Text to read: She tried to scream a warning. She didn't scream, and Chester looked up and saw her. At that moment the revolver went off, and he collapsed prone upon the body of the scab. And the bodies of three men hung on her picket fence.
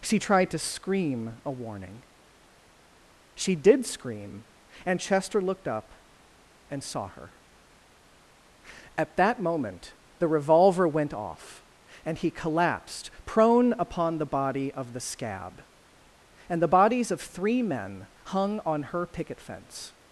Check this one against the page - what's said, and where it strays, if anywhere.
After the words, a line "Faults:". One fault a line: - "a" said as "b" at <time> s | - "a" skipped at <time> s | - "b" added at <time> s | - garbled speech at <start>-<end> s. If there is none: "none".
She tried to scream a warning. She did scream, and Chester looked up and saw her. At that moment the revolver went off, and he collapsed prone upon the body of the scab. And the bodies of three men hung on her picket fence.
Faults:
- "didn't" said as "did" at 3.5 s